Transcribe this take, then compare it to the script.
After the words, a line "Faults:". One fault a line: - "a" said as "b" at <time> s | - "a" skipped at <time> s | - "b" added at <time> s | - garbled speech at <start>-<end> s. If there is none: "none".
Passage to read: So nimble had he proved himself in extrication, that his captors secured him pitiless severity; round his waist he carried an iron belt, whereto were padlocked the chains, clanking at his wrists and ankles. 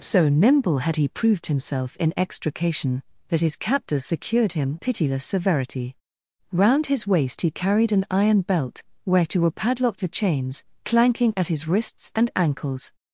So nimble had he proved himself in extrication, that his captors secured him pitiless severity; round his waist he carried an iron belt, whereto were padlocked the chains, clanking at his wrists and ankles.
Faults:
none